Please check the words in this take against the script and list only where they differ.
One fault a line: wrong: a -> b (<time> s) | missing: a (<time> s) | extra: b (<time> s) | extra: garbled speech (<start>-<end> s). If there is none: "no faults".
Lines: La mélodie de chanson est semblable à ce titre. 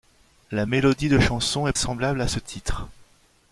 no faults